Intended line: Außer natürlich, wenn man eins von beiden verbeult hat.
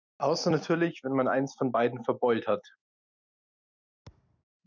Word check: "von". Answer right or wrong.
right